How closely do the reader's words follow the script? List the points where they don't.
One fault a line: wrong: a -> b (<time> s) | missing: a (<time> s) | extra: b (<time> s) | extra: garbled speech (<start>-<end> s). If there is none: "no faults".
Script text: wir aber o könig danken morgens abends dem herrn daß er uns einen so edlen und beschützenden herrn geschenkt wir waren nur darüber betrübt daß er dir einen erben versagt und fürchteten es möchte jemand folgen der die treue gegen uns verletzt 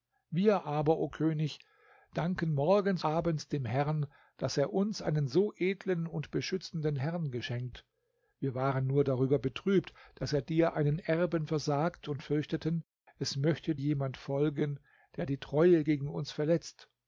no faults